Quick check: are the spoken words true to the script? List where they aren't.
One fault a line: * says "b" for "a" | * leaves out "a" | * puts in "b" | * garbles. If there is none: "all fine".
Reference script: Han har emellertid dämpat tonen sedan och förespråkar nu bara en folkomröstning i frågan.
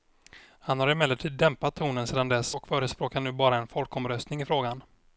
* puts in "dess"